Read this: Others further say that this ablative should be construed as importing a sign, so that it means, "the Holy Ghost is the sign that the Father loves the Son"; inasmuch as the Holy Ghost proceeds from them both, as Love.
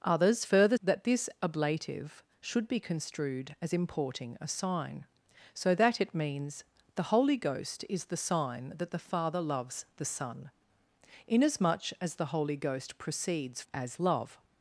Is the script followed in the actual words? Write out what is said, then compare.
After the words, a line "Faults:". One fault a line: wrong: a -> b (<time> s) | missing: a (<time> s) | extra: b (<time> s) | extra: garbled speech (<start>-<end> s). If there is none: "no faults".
Others further that this ablative should be construed as importing a sign, so that it means, "the Holy Ghost is the sign that the Father loves the Son"; inasmuch as the Holy Ghost proceeds as Love.
Faults:
missing: say (0.8 s)
missing: from them both (13.6 s)